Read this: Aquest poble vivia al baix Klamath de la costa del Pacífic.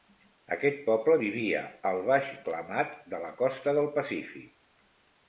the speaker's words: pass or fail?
pass